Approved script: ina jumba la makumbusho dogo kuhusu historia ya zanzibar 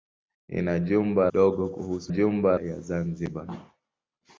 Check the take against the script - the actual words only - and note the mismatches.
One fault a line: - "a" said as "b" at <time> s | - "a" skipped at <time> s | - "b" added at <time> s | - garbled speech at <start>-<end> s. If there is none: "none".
- "la makumbusho" skipped at 1.3 s
- "historia" said as "jumba" at 2.1 s